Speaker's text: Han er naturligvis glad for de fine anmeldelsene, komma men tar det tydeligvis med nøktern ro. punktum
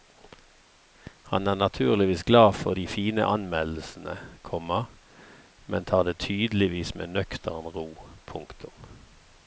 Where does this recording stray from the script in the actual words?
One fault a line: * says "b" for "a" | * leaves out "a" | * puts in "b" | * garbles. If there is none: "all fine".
all fine